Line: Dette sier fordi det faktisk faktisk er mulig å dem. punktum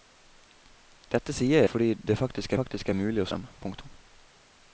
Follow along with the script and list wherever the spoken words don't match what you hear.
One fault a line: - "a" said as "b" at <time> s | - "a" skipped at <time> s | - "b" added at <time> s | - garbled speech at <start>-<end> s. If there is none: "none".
none